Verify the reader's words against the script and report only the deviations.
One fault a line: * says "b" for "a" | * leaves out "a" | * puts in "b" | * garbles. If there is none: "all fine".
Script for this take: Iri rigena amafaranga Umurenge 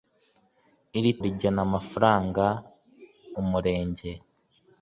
all fine